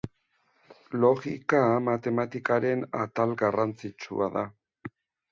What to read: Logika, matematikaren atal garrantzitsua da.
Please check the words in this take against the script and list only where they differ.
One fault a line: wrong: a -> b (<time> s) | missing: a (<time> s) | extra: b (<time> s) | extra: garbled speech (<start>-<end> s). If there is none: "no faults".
no faults